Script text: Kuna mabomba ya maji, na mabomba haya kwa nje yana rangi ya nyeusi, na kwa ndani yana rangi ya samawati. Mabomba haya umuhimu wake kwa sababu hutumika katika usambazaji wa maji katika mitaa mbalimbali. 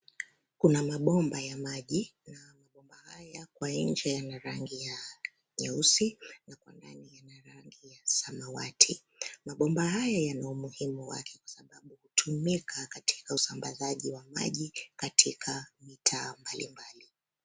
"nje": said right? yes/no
yes